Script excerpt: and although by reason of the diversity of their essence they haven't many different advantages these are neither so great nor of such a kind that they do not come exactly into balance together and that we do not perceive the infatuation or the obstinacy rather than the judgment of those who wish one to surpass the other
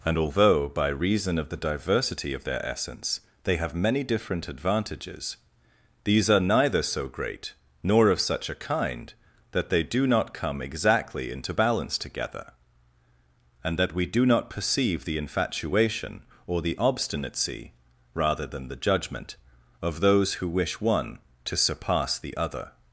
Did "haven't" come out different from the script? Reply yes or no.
yes